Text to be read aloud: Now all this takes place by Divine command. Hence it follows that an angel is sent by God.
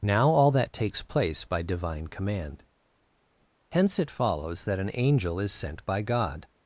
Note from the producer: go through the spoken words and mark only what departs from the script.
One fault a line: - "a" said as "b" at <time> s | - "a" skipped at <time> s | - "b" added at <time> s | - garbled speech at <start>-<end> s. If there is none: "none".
- "this" said as "that" at 0.5 s